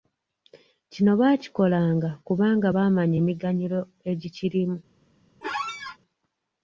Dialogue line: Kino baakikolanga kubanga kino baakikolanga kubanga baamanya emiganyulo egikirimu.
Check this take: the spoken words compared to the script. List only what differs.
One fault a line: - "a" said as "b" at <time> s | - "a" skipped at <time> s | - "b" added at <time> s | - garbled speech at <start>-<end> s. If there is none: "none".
- "kino baakikolanga kubanga" skipped at 2.7 s